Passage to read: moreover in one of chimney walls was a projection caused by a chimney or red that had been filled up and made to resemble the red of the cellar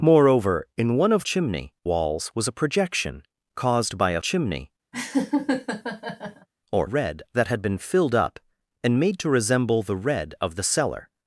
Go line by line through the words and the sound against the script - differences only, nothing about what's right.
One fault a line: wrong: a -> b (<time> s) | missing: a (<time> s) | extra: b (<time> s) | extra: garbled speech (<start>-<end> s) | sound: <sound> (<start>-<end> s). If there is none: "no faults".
sound: laugh (4.9-6.5 s)